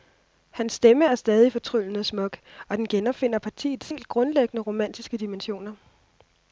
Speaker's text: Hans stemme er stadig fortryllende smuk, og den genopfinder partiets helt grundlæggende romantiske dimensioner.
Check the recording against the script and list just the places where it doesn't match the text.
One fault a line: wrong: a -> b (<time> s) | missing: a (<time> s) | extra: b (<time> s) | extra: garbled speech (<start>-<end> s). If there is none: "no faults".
no faults